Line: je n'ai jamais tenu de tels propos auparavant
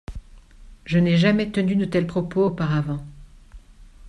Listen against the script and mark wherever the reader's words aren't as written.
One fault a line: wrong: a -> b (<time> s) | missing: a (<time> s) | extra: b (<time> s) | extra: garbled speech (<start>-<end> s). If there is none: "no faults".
no faults